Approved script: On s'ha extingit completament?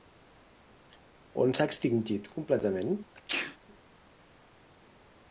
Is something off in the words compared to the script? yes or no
no